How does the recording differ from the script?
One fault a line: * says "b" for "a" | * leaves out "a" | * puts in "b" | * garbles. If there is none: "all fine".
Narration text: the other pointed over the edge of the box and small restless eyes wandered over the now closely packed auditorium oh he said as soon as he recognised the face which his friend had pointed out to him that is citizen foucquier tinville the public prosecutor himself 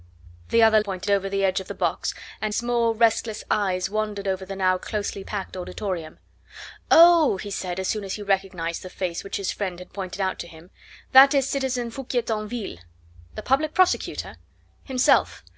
all fine